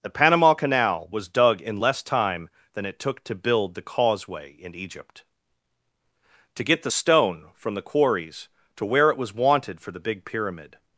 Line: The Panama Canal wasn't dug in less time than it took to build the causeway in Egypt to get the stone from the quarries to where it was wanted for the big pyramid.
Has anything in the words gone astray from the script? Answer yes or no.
yes